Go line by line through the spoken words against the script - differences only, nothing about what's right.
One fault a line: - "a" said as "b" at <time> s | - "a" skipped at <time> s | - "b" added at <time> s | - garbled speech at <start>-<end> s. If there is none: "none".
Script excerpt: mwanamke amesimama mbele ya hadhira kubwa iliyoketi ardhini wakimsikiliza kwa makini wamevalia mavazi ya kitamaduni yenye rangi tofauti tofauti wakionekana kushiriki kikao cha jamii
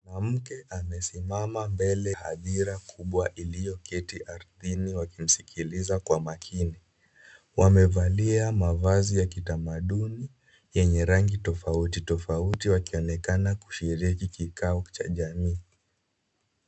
- "ya" skipped at 2.1 s